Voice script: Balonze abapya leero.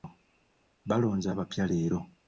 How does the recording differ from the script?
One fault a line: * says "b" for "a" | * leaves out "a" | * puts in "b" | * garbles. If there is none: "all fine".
all fine